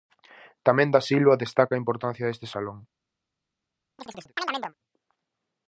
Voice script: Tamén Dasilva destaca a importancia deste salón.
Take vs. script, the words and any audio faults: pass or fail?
fail